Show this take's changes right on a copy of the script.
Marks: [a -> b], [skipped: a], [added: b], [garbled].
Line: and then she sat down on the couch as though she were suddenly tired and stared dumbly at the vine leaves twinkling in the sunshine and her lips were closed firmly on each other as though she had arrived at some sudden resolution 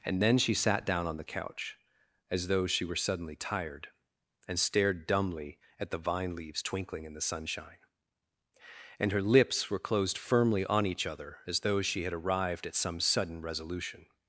and then she sat down on the couch as though she were suddenly tired and stared dumbly at the vine leaves twinkling in the sunshine and her lips were closed firmly on each other as though she had arrived at some sudden resolution